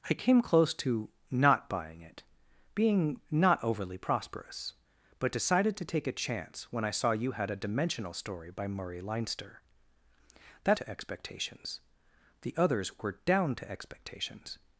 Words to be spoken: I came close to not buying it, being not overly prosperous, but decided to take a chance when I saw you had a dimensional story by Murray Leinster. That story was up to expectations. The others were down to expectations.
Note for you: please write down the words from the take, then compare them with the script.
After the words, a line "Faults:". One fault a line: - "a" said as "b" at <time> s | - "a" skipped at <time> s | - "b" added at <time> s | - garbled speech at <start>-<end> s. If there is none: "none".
I came close to not buying it, being not overly prosperous, but decided to take a chance when I saw you had a dimensional story by Murray Leinster. That to expectations. The others were down to expectations.
Faults:
- "story was up" skipped at 10.8 s